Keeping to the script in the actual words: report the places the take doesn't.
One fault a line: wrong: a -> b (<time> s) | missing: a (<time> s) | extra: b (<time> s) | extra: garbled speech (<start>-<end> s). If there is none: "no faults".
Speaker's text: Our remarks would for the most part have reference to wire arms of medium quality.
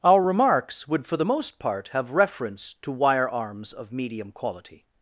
no faults